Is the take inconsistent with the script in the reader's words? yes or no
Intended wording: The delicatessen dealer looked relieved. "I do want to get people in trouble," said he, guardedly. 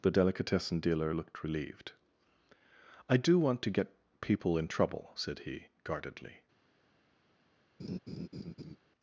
no